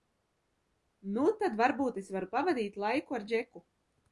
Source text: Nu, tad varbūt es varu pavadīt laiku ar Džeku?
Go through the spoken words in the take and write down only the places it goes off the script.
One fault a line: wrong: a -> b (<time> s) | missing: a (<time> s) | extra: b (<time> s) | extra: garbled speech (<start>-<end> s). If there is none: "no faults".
no faults